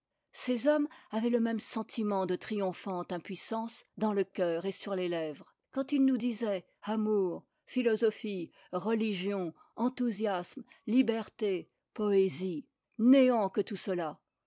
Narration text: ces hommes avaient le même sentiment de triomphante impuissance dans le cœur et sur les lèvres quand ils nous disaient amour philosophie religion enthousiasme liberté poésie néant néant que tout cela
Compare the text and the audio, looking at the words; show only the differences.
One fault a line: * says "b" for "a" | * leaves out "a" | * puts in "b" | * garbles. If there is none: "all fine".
* leaves out "néant"